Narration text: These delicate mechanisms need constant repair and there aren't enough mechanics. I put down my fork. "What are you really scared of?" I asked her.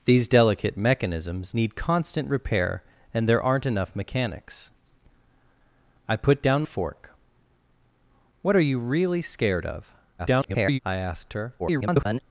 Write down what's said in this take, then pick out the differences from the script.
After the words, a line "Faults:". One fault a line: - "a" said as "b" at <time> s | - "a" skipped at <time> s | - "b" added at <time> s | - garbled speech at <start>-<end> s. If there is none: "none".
These delicate mechanisms need constant repair and there aren't enough mechanics. I put down fork. "What are you really scared of?" [garbled] I asked her. [garbled]
Faults:
- "my" skipped at 6.6 s
- garbled speech at 10.2-10.8 s
- garbled speech at 11.6-12.2 s